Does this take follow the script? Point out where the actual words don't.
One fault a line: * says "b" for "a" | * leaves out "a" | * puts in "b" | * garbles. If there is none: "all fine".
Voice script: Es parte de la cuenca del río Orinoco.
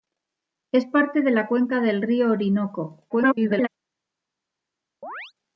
* garbles